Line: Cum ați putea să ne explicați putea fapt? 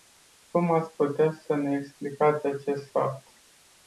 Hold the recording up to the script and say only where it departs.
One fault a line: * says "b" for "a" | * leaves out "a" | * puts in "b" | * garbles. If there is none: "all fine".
* says "acest" for "putea"